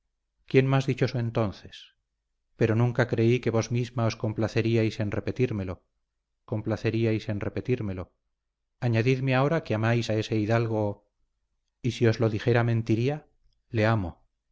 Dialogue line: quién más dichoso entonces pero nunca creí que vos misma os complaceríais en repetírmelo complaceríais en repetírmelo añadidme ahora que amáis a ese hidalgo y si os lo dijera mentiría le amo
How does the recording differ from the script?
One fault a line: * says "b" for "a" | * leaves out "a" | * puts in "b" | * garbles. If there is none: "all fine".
all fine